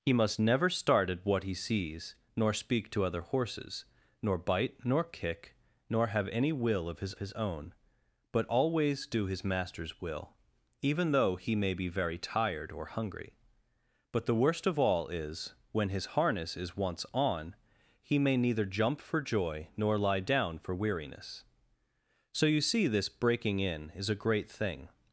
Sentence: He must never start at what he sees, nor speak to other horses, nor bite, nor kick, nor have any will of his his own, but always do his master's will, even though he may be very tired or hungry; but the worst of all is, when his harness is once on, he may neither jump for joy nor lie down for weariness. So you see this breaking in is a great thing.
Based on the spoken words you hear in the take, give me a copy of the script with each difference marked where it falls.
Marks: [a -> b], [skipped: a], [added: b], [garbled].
He must never start at what he sees, nor speak to other horses, nor bite, nor kick, nor have any will of his his own, but always do his master's will, even though he may be very tired or hungry; but the worst of all is, when his harness is once on, he may neither jump for joy nor lie down for weariness. So you see this breaking in is a great thing.